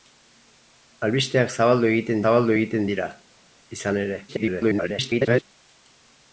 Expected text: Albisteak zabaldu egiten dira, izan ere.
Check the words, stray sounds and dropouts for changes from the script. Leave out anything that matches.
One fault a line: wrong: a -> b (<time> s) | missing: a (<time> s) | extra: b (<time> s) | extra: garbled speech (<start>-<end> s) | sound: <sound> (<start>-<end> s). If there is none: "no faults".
extra: zabaldu egiten (2.2 s)
extra: garbled speech (4.3-5.4 s)